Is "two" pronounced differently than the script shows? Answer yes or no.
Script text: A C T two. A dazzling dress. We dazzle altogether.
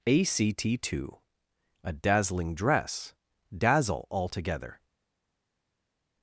no